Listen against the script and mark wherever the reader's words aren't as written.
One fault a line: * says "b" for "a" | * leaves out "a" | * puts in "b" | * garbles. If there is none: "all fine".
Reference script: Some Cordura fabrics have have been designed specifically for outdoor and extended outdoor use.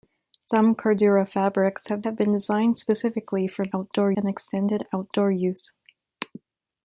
all fine